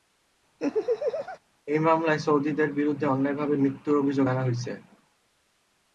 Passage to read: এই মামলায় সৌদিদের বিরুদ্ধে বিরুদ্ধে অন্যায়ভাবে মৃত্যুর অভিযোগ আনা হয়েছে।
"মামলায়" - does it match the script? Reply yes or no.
yes